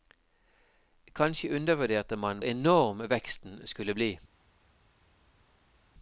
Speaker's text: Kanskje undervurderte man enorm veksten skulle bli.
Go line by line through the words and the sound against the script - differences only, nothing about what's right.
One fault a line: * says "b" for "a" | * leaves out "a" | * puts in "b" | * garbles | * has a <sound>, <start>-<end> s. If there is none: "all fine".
all fine